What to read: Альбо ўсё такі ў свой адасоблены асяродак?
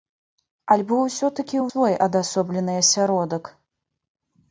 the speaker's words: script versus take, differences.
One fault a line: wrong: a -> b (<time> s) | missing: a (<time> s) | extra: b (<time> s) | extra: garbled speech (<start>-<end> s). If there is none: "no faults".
no faults